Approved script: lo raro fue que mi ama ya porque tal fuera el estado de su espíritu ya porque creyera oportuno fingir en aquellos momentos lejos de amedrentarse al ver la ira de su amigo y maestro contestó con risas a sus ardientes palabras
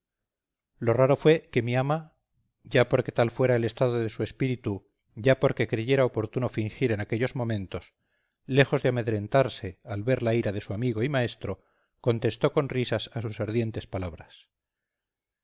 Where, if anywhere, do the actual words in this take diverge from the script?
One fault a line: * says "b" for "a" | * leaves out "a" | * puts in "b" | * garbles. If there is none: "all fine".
all fine